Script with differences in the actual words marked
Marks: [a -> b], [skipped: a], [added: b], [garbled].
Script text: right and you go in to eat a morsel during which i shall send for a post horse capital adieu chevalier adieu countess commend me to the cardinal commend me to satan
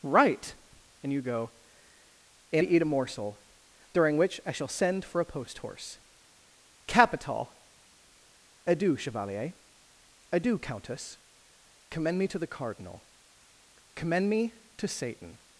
right and you go in to eat a morsel during which i shall send for a post horse capital adieu chevalier adieu countess commend me to the cardinal commend me to satan